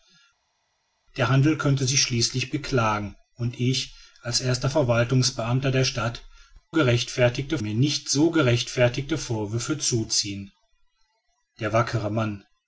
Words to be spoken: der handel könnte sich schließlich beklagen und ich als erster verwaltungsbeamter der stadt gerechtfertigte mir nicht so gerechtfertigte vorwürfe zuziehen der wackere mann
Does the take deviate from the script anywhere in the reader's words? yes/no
no